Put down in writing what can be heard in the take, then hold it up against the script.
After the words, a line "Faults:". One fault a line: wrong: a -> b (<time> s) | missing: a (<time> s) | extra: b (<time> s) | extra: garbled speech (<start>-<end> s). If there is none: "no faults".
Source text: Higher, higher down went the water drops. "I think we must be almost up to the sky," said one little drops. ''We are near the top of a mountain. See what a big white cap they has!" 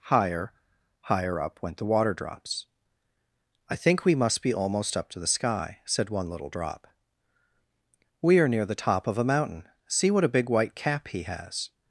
Higher, higher up went the water drops. "I think we must be almost up to the sky," said one little drop. ''We are near the top of a mountain. See what a big white cap he has!"
Faults:
wrong: down -> up (1.4 s)
wrong: drops -> drop (6.5 s)
wrong: they -> he (11.1 s)